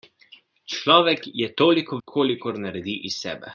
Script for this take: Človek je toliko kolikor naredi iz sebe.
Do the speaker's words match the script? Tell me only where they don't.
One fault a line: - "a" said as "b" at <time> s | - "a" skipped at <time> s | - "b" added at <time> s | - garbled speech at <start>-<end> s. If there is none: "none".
none